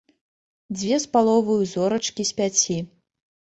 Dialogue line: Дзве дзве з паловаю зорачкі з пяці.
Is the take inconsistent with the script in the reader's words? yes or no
yes